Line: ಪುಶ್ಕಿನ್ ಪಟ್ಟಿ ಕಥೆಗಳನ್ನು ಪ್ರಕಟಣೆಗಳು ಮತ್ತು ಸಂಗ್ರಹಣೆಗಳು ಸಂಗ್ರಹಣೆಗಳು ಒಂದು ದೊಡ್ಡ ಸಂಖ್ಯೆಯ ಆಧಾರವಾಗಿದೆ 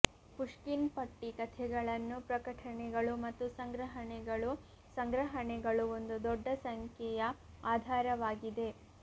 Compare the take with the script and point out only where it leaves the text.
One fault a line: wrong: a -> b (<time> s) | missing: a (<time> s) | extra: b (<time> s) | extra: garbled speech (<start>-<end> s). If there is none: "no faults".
no faults